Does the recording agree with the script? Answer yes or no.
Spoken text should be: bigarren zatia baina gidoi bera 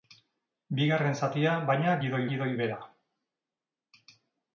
no